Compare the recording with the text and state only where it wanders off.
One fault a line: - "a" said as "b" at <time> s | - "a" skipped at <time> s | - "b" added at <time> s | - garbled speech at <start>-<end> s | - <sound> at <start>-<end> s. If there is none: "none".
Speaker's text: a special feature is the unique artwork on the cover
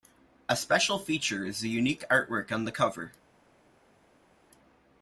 none